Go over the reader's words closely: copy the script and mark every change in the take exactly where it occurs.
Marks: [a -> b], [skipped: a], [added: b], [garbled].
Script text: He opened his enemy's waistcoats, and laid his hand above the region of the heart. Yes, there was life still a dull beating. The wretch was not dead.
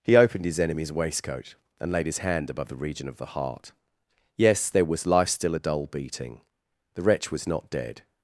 He opened his enemy's [waistcoats, -> waistcoat] and laid his hand above the region of the heart. Yes, there was life still a dull beating. The wretch was not dead.